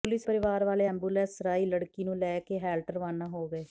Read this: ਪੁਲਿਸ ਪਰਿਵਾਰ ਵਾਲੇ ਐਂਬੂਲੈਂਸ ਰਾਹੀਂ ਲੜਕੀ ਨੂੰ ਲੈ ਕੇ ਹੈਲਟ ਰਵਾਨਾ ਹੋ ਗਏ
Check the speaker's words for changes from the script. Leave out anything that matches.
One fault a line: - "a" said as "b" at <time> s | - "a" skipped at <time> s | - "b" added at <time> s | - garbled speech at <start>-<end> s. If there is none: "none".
none